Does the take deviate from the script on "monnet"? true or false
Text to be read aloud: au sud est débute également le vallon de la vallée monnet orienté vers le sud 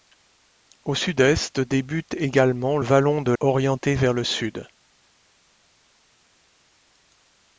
true